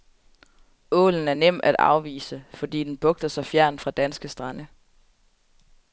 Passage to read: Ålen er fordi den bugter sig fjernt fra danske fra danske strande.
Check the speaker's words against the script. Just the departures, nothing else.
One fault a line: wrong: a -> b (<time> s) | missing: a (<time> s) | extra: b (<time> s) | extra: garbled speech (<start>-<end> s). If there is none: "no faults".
extra: nem at afvise (1.3 s)
missing: fra danske (4.3 s)